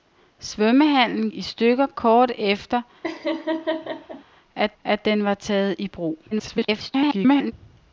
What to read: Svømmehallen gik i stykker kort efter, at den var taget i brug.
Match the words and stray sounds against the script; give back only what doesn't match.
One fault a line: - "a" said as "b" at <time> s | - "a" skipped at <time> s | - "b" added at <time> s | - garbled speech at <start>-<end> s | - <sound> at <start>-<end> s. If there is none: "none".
- "gik" skipped at 1.3 s
- laugh at 3.0-4.2 s
- "at" added at 4.8 s
- garbled speech at 6.3-7.5 s